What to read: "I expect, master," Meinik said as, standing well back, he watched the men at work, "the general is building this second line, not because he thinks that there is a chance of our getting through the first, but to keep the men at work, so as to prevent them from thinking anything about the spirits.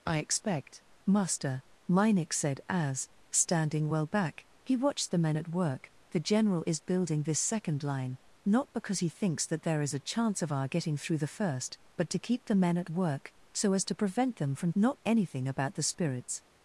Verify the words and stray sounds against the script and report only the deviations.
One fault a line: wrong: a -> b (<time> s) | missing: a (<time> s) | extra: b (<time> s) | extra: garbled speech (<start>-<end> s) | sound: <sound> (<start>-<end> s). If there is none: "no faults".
wrong: thinking -> not (14.8 s)